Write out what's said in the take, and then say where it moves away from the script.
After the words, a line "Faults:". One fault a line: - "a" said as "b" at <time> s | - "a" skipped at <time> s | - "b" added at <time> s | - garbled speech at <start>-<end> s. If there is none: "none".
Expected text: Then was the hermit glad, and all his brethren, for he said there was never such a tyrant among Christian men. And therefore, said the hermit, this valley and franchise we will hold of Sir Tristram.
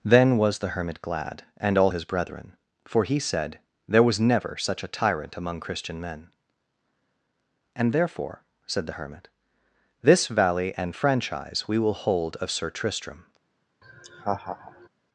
Then was the hermit glad, and all his brethren, for he said there was never such a tyrant among Christian men. And therefore, said the hermit, this valley and franchise we will hold of Sir Tristram.
Faults:
none